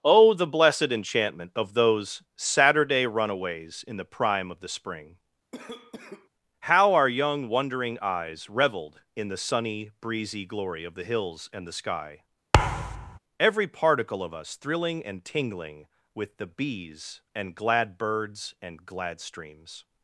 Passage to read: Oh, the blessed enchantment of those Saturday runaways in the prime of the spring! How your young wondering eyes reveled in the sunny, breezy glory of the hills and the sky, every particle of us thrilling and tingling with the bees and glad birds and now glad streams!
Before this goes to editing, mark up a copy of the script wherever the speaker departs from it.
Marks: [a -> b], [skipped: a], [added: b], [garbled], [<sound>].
Oh, the blessed enchantment of those Saturday runaways in the prime of the spring! [cough] How [your -> our] young wondering eyes reveled in the sunny, breezy glory of the hills and the sky, [thud] every particle of us thrilling and tingling with the bees and glad birds and [skipped: now] glad streams!